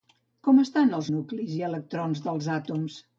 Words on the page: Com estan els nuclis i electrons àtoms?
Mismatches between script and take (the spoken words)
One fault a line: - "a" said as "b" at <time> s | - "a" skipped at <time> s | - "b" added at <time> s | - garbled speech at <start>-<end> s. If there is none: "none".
- "dels" added at 2.3 s